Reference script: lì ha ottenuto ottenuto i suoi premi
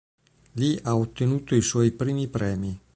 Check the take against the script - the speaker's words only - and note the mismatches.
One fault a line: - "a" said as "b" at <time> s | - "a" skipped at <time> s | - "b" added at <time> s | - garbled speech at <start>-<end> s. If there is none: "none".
- "ottenuto" skipped at 1.5 s
- "primi" added at 1.9 s